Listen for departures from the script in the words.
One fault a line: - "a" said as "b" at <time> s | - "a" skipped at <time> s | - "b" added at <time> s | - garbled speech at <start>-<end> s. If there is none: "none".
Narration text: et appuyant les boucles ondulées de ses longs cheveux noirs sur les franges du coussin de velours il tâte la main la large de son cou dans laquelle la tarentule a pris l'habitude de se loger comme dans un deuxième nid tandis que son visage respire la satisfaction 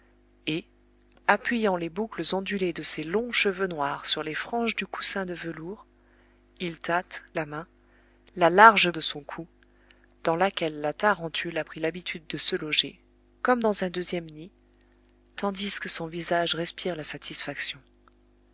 none